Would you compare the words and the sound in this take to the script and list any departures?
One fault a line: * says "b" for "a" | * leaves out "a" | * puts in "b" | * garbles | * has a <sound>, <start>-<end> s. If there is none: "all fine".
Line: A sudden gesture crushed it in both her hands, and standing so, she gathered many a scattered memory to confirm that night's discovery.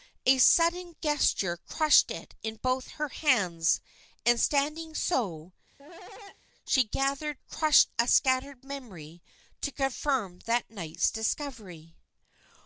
* has a cough, 5.8-6.4 s
* says "crushed" for "many"